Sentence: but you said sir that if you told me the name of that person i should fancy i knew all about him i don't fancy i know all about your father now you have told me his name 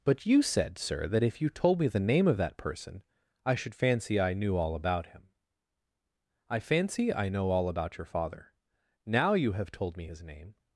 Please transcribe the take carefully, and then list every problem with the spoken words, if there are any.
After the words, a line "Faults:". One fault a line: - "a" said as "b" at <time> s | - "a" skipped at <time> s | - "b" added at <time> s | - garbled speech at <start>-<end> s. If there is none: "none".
but you said sir that if you told me the name of that person i should fancy i knew all about him i fancy i know all about your father now you have told me his name
Faults:
- "don't" skipped at 6.6 s